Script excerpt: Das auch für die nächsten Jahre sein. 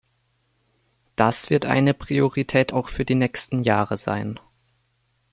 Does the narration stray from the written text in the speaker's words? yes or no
yes